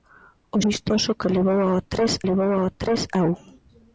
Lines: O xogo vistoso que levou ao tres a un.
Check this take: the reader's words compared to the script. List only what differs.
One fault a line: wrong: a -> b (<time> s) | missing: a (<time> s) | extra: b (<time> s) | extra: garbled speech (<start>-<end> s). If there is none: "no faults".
missing: xogo (0.6 s)
extra: levou ao tres (2.3 s)